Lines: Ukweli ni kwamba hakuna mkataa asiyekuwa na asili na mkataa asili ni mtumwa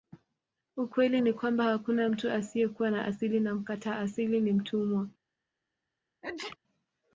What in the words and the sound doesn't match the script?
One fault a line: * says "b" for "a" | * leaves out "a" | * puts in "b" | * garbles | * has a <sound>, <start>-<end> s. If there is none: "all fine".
* says "mtu" for "mkataa"
* has a sneeze, 6.2-6.6 s